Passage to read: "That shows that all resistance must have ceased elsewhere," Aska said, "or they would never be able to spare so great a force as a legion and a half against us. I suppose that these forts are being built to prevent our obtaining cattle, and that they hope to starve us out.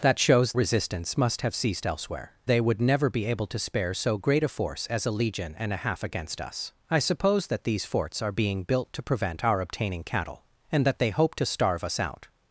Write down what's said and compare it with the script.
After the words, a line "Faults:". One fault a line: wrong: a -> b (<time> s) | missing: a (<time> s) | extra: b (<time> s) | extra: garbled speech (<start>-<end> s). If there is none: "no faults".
"That shows resistance must have ceased elsewhere," They would never be able to spare so great a force as a legion and a half against us. I suppose that these forts are being built to prevent our obtaining cattle, and that they hope to starve us out.
Faults:
missing: that all (0.5 s)
missing: Aska said or (2.3 s)